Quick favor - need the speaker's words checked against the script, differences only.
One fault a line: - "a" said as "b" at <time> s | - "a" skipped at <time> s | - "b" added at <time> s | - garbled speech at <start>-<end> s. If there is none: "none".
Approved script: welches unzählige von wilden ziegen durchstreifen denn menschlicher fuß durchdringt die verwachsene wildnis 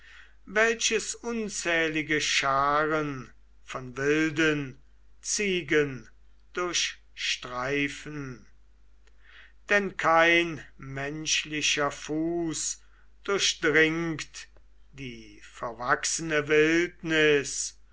- "scharen" added at 2.2 s
- "kein" added at 10.0 s